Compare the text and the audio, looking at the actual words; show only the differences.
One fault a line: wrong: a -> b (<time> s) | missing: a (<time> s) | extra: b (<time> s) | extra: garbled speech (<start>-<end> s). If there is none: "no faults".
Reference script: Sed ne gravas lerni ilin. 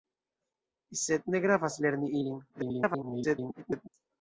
extra: garbled speech (2.5-3.9 s)